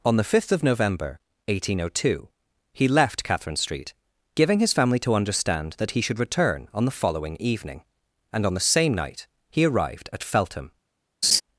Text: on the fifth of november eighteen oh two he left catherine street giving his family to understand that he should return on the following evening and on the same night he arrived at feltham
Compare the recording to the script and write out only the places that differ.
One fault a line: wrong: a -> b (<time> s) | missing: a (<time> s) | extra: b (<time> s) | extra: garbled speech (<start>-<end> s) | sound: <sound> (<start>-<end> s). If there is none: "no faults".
sound: laugh (11.2-11.4 s)